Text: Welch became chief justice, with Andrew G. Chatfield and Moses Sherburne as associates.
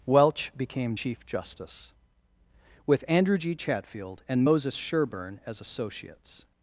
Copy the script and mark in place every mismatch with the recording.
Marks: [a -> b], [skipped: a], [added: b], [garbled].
Welch became chief justice, with Andrew G. Chatfield and Moses Sherburne as associates.